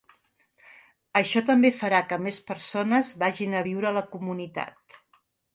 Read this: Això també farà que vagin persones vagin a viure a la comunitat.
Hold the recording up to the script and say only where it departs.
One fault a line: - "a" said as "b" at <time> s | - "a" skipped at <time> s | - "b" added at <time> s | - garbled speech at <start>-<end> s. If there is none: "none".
- "vagin" said as "més" at 2.3 s